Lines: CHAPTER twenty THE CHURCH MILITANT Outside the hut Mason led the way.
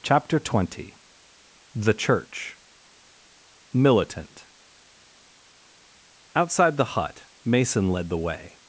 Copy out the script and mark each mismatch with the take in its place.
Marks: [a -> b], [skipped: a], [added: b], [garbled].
CHAPTER twenty THE CHURCH MILITANT Outside the hut Mason led the way.